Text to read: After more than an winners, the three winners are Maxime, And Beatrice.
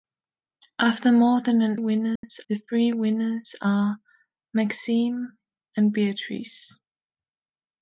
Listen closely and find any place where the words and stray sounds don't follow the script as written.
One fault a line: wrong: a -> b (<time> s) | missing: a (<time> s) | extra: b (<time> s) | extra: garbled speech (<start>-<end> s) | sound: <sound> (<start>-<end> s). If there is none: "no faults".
sound: dropout (2.2-2.2 s)